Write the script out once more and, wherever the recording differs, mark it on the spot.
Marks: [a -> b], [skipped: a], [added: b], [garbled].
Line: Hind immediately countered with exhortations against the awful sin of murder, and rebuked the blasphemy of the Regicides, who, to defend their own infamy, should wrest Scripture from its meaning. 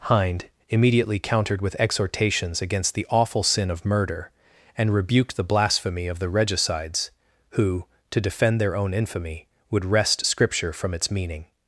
Hind immediately countered with exhortations against the awful sin of murder, and rebuked the blasphemy of the Regicides, who, to defend their own infamy, [should -> would] wrest Scripture from its meaning.